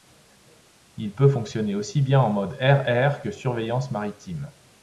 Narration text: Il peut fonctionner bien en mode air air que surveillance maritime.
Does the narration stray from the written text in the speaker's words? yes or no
yes